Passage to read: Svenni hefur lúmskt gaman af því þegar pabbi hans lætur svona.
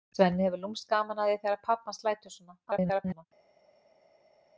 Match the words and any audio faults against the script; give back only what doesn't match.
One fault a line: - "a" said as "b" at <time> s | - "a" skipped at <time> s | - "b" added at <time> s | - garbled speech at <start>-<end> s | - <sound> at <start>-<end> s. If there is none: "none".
- garbled speech at 2.7-3.3 s